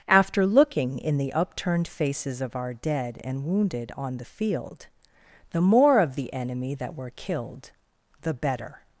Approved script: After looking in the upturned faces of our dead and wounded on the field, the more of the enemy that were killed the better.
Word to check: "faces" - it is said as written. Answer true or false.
true